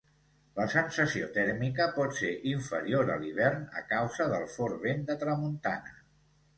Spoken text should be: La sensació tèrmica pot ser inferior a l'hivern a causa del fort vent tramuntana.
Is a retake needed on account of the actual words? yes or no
yes